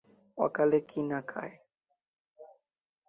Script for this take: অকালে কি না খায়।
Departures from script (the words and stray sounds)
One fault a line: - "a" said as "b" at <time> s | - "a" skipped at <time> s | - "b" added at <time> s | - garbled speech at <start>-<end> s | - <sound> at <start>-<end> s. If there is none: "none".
none